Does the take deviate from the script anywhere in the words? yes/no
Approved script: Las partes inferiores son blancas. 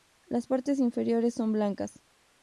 no